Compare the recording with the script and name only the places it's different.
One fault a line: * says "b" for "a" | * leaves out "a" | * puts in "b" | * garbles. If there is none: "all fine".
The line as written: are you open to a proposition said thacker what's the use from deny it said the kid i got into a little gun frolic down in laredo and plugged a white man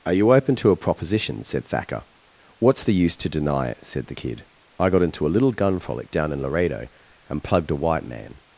* says "to" for "from"